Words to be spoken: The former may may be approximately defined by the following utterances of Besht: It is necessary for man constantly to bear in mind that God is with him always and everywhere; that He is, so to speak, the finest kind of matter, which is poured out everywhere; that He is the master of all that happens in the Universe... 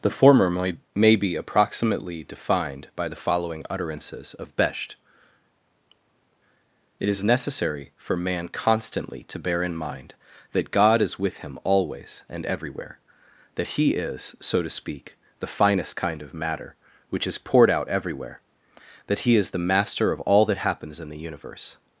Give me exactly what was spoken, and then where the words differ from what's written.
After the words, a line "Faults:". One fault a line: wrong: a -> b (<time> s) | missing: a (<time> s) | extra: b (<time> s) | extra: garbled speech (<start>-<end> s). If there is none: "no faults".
The former may may be approximately defined by the following utterances of Besht: It is necessary for man constantly to bear in mind that God is with him always and everywhere; that He is, so to speak, the finest kind of matter, which is poured out everywhere; that He is the master of all that happens in the Universe...
Faults:
no faults